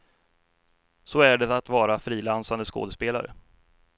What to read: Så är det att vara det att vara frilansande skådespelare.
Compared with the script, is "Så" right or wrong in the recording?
right